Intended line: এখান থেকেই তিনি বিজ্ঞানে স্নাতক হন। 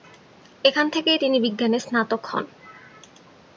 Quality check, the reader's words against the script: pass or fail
pass